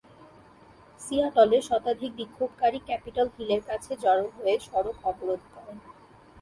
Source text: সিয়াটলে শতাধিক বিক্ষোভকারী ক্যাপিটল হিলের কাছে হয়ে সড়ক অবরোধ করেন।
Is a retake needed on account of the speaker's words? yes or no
yes